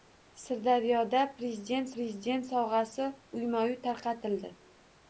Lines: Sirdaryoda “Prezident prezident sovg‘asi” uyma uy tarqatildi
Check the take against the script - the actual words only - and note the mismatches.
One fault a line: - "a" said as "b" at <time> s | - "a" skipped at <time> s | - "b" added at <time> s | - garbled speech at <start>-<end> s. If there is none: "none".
none